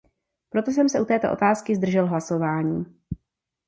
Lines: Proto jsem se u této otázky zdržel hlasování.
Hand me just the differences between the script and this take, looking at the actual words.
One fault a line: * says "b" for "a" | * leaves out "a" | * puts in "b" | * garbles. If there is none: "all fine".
all fine